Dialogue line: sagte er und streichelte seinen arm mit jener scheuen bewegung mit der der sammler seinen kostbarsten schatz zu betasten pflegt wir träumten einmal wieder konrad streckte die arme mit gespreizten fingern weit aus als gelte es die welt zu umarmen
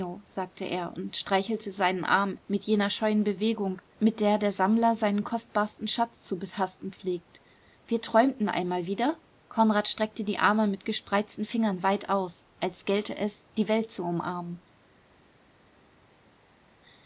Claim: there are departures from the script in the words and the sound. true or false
false